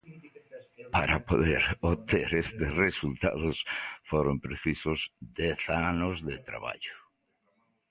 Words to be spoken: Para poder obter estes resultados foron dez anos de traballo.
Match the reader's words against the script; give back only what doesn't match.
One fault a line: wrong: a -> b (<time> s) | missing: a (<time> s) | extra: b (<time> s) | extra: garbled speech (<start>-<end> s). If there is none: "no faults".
extra: precisos (4.5 s)